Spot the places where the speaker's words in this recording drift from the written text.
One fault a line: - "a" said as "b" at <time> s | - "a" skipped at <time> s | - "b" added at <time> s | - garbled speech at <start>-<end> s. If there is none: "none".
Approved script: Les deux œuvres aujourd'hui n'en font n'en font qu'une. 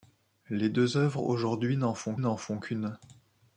none